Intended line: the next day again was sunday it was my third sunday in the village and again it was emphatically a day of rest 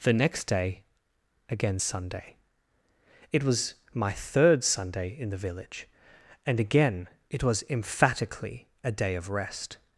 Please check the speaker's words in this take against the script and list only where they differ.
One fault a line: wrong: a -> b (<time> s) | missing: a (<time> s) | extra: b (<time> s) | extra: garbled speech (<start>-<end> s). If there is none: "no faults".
missing: was (1.8 s)